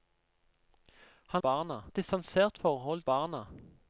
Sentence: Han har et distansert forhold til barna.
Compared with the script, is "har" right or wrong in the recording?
wrong